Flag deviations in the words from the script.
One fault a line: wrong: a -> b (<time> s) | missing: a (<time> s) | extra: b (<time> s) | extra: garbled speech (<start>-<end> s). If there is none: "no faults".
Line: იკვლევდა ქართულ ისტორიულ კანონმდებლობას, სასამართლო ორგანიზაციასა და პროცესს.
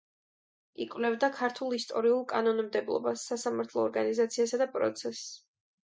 no faults